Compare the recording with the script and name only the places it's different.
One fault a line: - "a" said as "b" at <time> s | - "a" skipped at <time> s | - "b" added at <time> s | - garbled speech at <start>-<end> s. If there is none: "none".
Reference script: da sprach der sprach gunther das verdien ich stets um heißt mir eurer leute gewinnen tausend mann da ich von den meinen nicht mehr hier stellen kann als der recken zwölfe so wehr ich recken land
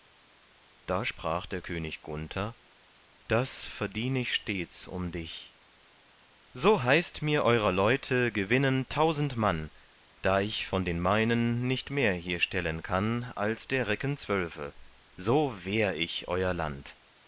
- "sprach" said as "könig" at 1.6 s
- "dich so" added at 5.1 s
- "recken" said as "euer" at 16.3 s